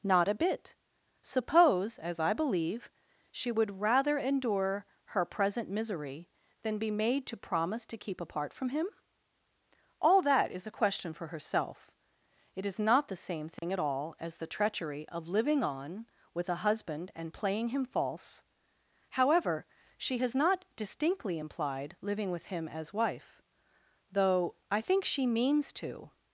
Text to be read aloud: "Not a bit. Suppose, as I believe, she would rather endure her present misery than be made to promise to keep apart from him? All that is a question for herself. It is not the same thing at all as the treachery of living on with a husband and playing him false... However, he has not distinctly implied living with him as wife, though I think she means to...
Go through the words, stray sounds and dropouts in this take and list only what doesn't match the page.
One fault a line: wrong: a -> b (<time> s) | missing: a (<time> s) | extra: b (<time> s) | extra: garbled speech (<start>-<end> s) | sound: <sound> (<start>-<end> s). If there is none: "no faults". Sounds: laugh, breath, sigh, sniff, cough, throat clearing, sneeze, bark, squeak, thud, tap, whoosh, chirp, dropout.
sound: dropout (13.6-13.6 s)
wrong: he -> she (20.0 s)